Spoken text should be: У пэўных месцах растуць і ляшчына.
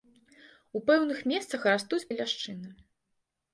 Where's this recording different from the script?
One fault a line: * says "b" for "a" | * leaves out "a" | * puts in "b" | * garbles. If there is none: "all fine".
all fine